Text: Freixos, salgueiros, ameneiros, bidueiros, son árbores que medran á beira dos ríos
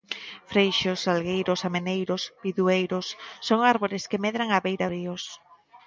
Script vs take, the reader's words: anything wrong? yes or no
yes